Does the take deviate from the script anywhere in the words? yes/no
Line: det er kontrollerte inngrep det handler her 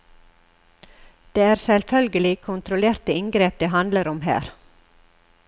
yes